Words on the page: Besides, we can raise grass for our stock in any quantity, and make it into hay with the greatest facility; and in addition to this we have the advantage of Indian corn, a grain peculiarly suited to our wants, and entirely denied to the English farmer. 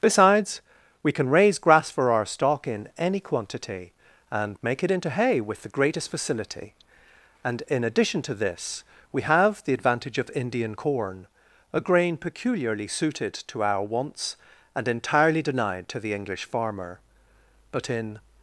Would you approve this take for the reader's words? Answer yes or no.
no